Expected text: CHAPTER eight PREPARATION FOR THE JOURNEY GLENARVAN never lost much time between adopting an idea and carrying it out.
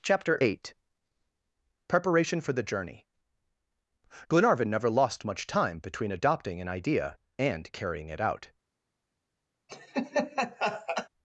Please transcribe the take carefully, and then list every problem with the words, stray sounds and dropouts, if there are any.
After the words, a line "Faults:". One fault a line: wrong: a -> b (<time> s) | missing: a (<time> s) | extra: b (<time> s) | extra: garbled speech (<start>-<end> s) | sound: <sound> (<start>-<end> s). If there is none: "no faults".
CHAPTER eight PREPARATION FOR THE JOURNEY GLENARVAN never lost much time between adopting an idea and carrying it out.
Faults:
sound: laugh (9.7-11.1 s)